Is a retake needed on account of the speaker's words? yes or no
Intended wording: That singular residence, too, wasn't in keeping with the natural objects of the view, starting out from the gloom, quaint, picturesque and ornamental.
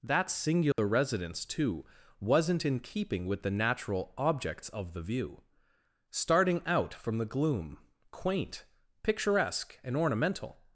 no